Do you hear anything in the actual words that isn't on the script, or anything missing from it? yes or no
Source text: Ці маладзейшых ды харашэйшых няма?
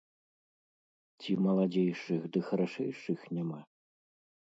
no